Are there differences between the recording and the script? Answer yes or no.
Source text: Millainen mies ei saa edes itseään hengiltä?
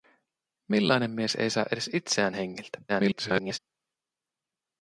yes